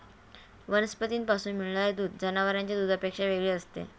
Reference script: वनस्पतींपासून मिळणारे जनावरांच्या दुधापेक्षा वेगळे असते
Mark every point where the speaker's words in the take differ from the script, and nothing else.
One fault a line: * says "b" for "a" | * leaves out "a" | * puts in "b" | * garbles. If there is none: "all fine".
* puts in "दूध"